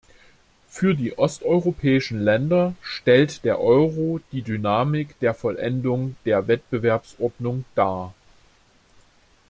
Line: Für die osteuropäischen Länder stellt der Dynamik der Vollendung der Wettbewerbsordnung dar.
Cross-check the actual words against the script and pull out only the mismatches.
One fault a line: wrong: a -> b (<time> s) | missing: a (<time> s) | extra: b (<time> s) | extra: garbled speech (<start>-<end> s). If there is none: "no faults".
extra: Euro die (3.6 s)